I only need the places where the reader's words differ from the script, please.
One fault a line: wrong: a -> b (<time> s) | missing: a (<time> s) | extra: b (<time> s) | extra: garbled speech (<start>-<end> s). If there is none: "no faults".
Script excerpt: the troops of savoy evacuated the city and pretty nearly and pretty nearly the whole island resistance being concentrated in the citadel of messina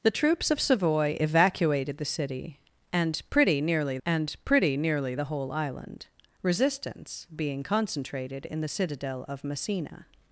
no faults